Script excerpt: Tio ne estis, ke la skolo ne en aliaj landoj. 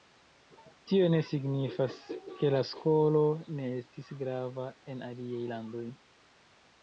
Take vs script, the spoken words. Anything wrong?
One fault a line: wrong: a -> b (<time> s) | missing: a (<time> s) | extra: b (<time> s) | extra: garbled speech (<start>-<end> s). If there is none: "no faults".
wrong: estis -> signifas (1.3 s)
extra: estis grava (3.8 s)